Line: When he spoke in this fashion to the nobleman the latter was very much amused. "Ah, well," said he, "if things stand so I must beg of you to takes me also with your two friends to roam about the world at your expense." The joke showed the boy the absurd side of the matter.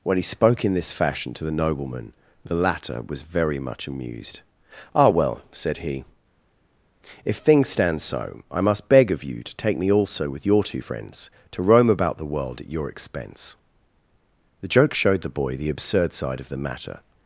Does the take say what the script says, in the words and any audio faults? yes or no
no